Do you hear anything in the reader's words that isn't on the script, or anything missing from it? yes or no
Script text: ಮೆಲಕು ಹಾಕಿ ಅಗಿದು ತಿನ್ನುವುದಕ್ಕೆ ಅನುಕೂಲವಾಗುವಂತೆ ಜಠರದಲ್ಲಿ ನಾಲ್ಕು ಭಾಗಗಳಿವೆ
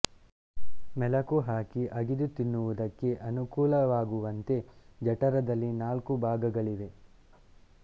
no